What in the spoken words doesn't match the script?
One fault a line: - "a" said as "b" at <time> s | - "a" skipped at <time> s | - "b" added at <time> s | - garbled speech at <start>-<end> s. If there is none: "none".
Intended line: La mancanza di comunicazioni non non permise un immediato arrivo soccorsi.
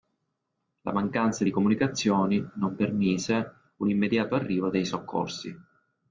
- "non" skipped at 2.8 s
- "dei" added at 4.7 s